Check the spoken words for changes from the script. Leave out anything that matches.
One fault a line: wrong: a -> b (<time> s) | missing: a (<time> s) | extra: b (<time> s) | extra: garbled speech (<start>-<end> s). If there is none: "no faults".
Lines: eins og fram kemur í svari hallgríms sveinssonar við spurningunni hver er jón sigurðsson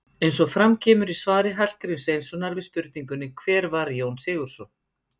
wrong: er -> var (3.7 s)